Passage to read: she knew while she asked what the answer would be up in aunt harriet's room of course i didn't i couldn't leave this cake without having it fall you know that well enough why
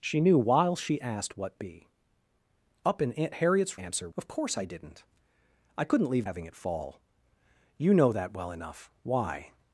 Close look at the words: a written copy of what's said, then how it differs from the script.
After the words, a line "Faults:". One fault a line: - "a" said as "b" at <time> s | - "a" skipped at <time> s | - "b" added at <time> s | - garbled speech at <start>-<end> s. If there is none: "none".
she knew while she asked what be up in aunt harriet's answer of course i didn't i couldn't leave having it fall you know that well enough why
Faults:
- "the answer would" skipped at 1.6 s
- "room" said as "answer" at 3.8 s
- "this cake without" skipped at 6.3 s